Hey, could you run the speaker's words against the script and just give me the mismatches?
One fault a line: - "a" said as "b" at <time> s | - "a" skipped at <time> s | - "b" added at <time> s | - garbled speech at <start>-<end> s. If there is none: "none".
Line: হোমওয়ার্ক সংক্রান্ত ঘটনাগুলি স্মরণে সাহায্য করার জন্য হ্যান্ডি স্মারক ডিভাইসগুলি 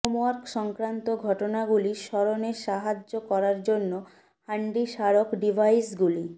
none